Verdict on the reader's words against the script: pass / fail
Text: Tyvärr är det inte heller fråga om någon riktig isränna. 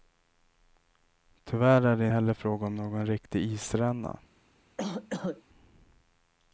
fail